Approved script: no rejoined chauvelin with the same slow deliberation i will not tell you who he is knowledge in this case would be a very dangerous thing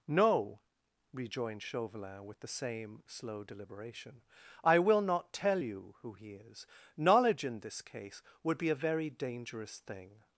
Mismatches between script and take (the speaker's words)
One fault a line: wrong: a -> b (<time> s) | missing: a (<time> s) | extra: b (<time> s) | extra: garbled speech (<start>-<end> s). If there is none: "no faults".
no faults